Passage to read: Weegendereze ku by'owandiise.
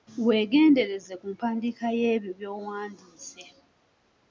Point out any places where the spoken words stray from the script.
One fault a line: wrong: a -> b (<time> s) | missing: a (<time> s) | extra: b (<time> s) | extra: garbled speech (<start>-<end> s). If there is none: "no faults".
extra: mpandiika y'ebyo (1.3 s)